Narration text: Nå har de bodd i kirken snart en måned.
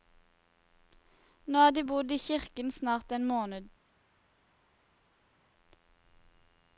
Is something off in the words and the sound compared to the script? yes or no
no